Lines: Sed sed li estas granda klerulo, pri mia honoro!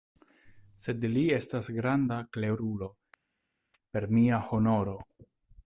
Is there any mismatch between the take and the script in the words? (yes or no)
yes